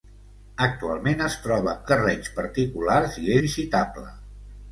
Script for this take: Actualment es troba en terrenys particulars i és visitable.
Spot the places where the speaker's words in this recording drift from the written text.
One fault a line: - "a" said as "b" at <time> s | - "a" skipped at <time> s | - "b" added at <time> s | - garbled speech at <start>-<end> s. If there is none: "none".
- "en" skipped at 1.8 s
- "és" skipped at 3.4 s